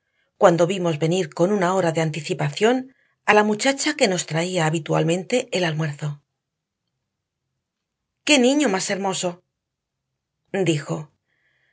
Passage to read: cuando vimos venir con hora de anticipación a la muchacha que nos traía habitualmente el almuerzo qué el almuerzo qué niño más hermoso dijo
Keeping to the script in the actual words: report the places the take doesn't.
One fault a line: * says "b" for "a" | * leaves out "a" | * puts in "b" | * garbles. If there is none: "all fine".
* puts in "una"
* leaves out "el almuerzo qué"